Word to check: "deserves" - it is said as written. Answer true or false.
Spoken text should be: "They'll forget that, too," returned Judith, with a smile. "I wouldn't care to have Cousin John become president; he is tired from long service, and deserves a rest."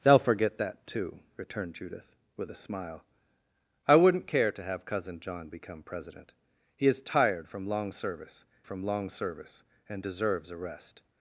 true